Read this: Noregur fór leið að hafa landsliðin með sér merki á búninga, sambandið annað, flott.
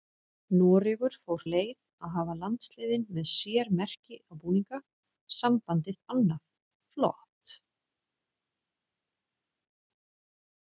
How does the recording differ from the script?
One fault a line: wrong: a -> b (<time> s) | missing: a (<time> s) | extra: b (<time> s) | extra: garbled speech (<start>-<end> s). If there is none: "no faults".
no faults